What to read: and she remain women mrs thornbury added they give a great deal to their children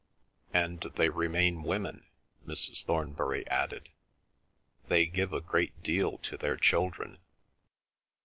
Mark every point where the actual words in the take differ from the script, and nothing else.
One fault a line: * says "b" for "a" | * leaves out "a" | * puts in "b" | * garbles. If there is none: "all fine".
* says "they" for "she"